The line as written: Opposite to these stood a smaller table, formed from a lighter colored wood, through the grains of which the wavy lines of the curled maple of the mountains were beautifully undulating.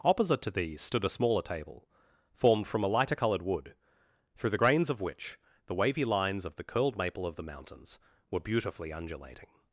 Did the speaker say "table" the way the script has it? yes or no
yes